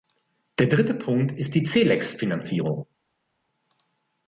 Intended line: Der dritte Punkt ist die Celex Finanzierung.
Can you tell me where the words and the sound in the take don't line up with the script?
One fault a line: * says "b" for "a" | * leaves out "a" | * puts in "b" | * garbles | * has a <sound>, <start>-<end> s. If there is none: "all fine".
all fine